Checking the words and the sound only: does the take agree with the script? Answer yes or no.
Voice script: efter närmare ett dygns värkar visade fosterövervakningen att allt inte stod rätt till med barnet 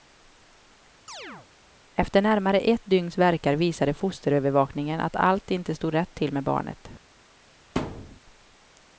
no